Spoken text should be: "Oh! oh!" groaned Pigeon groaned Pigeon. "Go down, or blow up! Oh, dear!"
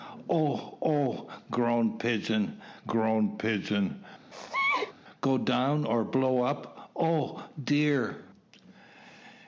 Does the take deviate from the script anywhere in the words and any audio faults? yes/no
yes